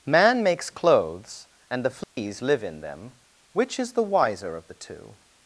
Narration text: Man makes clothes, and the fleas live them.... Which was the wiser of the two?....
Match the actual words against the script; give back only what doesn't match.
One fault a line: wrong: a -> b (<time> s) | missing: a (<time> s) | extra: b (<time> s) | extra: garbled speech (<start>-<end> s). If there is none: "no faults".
extra: in (2.6 s)
wrong: was -> is (3.8 s)